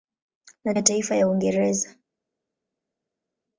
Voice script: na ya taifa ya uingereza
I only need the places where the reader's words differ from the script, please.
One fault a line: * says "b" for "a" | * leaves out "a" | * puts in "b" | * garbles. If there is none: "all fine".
all fine